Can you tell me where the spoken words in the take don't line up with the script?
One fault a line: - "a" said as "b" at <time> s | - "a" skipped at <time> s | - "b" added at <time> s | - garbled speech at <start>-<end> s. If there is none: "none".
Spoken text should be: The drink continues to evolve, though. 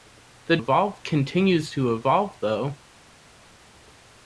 - "drink" said as "evolve" at 0.6 s